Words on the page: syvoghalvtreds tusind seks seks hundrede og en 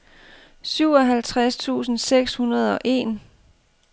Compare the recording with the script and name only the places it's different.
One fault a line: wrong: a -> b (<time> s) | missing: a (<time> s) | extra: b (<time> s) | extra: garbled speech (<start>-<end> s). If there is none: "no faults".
missing: seks (2.3 s)